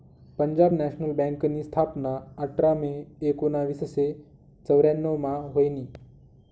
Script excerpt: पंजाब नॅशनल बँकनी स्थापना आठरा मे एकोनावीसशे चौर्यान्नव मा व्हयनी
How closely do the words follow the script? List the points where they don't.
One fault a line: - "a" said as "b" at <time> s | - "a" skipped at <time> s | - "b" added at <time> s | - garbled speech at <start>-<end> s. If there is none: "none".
none